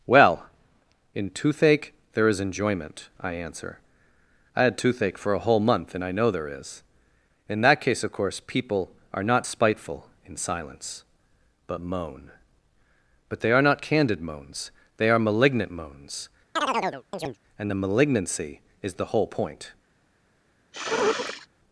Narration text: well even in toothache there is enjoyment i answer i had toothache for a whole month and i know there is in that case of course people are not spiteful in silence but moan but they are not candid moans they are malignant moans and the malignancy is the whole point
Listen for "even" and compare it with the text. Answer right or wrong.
wrong